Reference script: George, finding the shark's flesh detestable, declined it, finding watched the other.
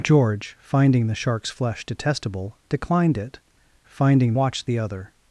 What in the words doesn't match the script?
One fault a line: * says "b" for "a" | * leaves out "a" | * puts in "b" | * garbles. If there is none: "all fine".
all fine